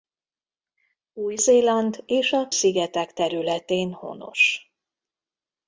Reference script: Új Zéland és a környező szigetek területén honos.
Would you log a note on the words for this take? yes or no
yes